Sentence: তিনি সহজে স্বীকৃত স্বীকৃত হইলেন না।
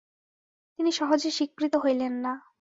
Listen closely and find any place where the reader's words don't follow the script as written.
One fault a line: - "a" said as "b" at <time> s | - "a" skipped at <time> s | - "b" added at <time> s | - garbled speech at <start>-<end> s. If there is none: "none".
- "স্বীকৃত" skipped at 1.8 s